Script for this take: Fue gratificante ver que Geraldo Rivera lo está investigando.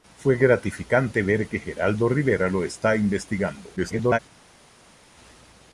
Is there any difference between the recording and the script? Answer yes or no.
yes